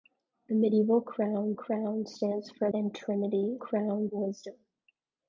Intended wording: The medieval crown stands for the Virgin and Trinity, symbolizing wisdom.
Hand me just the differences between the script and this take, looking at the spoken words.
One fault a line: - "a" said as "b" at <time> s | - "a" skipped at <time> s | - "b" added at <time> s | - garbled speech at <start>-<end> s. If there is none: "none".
- "crown" added at 1.5 s
- "the Virgin" skipped at 2.7 s
- "symbolizing" said as "crown" at 3.6 s